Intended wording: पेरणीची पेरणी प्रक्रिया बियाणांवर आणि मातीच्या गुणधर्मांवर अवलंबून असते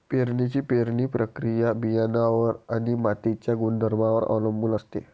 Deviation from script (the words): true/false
false